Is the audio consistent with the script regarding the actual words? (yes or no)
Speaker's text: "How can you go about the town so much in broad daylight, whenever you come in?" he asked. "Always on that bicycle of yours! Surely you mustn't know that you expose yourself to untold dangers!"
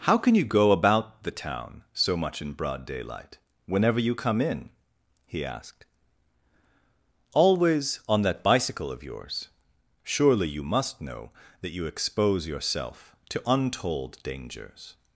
no